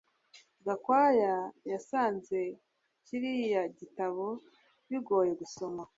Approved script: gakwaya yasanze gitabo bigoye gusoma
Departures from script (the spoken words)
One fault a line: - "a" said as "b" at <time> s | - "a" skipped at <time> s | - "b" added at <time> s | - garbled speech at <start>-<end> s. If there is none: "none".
- "kiriya" added at 3.0 s